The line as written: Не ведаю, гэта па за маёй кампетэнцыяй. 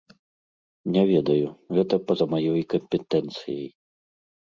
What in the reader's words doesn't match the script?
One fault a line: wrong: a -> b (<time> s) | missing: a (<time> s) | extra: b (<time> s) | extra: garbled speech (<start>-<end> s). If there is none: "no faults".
no faults